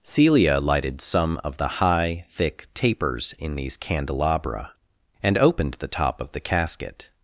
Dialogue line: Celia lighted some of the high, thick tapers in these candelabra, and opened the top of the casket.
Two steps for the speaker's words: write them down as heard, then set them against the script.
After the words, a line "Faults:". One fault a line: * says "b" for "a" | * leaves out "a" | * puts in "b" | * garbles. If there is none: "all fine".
Celia lighted some of the high, thick tapers in these candelabra, and opened the top of the casket.
Faults:
all fine